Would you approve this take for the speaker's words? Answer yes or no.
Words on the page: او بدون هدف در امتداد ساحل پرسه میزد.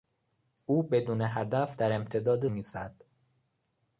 no